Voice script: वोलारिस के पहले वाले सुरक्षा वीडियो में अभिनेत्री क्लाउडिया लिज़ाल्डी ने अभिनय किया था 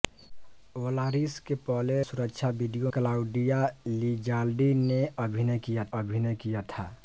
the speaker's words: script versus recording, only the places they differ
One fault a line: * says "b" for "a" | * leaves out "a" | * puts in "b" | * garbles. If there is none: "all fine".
* leaves out "वाले"
* leaves out "में अभिनेत्री"
* puts in "अभिनय किया"